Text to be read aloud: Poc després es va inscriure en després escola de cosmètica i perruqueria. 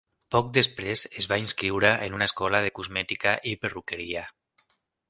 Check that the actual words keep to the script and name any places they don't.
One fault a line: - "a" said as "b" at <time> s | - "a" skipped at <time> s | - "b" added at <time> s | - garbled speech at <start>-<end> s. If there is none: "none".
- "després" said as "una" at 2.2 s